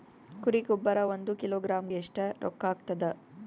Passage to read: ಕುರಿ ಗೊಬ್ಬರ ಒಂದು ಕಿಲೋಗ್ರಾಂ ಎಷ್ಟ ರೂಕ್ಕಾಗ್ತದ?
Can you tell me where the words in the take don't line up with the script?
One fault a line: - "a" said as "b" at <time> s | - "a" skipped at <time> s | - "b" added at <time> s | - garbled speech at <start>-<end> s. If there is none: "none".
none